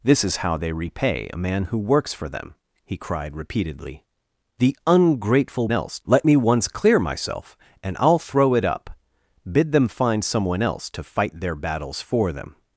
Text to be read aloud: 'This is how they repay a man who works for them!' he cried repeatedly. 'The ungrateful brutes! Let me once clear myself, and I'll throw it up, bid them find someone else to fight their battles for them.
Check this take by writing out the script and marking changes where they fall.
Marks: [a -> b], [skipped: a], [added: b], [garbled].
'This is how they repay a man who works for them!' he cried repeatedly. 'The ungrateful [brutes! -> else] Let me once clear myself, and I'll throw it up, bid them find someone else to fight their battles for them.